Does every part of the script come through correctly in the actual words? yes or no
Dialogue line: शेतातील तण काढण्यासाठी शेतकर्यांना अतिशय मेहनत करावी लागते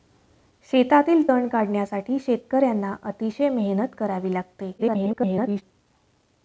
no